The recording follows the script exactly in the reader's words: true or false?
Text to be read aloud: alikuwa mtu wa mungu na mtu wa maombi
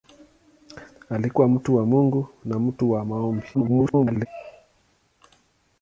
false